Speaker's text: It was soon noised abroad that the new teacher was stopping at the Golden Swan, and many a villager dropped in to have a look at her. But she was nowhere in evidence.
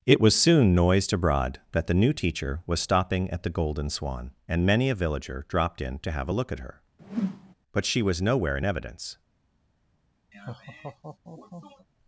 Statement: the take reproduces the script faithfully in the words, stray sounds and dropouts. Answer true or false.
false